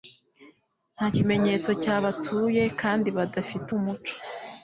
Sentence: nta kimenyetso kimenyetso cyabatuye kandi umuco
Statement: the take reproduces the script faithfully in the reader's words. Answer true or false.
false